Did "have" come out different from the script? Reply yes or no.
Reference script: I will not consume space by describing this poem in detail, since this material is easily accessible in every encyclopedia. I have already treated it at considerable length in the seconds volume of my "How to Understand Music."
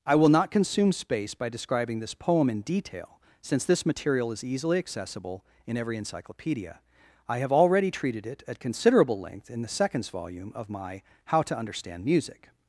no